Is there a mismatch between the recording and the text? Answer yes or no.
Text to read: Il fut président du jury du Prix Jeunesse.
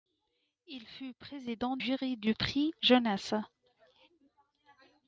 yes